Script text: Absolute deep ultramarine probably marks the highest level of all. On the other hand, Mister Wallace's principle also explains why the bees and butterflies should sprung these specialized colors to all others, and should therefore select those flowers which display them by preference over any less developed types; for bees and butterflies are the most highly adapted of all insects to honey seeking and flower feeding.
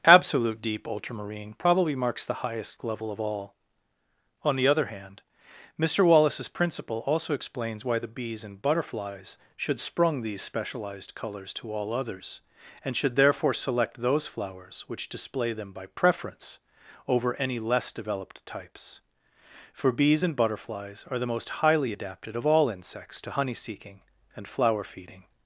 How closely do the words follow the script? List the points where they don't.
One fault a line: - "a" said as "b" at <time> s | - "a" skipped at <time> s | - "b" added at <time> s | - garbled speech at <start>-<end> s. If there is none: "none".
none